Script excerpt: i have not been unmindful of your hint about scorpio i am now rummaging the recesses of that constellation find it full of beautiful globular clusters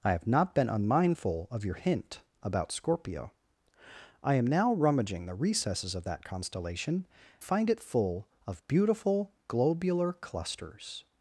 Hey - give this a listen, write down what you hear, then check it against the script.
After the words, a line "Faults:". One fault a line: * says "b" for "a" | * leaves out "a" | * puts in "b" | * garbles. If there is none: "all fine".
i have not been unmindful of your hint about scorpio i am now rummaging the recesses of that constellation find it full of beautiful globular clusters
Faults:
all fine